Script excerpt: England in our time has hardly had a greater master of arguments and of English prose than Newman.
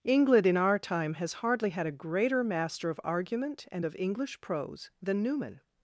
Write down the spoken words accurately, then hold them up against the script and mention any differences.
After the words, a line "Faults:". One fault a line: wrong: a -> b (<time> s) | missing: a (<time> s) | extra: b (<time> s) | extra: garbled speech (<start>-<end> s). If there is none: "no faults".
England in our time has hardly had a greater master of argument and of English prose than Newman.
Faults:
wrong: arguments -> argument (3.0 s)